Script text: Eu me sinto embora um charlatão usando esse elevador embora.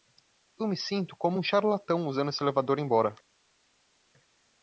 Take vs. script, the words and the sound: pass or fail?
fail